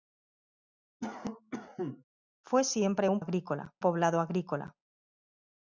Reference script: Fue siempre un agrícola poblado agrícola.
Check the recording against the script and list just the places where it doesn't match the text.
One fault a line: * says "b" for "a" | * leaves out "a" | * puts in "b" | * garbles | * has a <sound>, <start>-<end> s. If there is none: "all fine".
* has a cough, 1.0-2.0 s